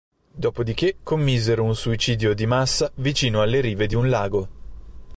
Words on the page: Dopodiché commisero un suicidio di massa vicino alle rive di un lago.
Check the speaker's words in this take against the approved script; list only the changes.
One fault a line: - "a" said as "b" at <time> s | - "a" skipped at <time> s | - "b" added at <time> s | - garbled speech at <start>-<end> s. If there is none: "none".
none